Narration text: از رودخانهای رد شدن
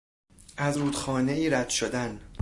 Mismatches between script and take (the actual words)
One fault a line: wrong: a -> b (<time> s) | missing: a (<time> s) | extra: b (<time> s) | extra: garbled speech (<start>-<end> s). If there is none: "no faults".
no faults